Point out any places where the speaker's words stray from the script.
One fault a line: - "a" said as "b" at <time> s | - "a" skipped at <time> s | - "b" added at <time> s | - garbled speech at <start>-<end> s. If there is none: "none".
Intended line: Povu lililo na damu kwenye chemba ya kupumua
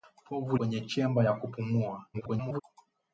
- "lililo na damu" skipped at 0.6 s
- garbled speech at 2.1-2.6 s